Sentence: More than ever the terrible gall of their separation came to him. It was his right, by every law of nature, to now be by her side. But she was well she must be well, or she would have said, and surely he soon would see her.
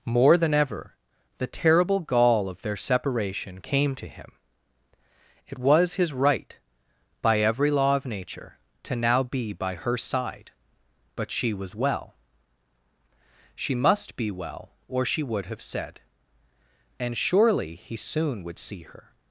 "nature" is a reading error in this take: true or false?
false